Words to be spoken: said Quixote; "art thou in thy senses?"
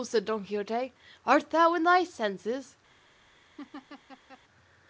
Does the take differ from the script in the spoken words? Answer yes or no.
yes